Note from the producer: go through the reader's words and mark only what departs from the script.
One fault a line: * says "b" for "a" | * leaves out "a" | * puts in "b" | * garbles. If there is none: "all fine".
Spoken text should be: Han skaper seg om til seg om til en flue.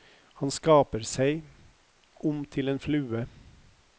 * leaves out "seg om til"